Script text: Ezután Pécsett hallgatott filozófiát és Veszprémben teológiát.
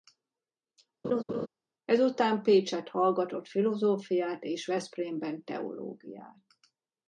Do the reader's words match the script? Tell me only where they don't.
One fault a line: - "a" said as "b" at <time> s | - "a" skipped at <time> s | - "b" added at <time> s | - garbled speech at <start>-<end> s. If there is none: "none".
none